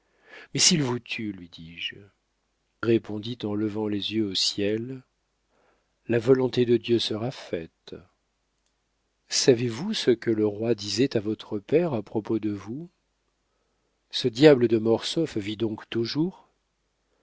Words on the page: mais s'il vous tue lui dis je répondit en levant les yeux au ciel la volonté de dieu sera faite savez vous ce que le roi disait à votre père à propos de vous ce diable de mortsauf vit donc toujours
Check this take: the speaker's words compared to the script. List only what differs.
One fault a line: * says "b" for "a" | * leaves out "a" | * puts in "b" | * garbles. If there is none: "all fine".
all fine